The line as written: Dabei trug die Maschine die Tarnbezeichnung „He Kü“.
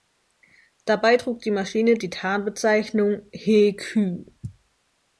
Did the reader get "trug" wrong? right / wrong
right